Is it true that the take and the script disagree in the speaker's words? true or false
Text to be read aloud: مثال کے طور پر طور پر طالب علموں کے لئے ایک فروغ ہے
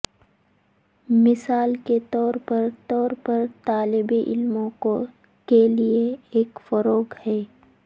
false